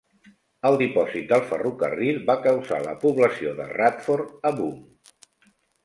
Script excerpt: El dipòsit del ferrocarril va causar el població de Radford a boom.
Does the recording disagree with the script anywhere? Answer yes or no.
yes